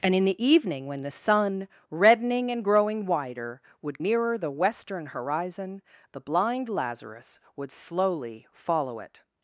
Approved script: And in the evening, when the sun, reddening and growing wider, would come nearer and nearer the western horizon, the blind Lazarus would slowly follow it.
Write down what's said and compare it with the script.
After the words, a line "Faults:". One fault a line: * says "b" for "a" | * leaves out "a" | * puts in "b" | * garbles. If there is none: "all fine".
And in the evening, when the sun, reddening and growing wider, would nearer the western horizon, the blind Lazarus would slowly follow it.
Faults:
* leaves out "come nearer and"